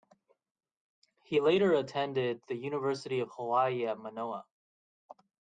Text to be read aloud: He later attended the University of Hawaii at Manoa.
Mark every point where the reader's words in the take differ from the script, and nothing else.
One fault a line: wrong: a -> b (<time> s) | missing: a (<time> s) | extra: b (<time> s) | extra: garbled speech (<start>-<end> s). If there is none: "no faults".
no faults